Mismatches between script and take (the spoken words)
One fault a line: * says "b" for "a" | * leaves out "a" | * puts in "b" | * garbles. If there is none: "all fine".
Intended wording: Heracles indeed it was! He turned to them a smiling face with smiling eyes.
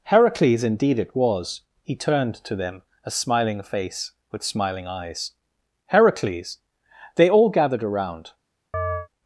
* puts in "Heracles They all gathered around"